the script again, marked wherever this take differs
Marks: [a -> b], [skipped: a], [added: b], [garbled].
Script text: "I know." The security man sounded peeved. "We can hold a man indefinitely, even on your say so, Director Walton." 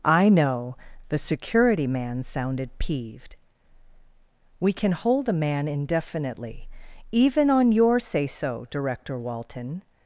"I know." The security man sounded peeved. "We can hold a man indefinitely, even on your say so, Director Walton."